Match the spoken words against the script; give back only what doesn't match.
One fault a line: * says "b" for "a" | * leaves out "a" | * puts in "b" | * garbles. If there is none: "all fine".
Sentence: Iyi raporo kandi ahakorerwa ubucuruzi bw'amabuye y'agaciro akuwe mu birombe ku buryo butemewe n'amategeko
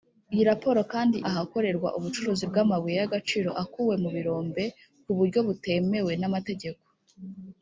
all fine